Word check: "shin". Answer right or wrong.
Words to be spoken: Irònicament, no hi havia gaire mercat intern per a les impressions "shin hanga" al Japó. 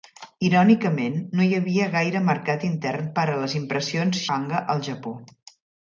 wrong